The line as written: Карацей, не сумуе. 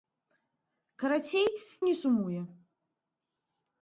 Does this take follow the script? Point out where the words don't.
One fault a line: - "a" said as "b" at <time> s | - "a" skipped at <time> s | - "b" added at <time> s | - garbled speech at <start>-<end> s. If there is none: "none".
none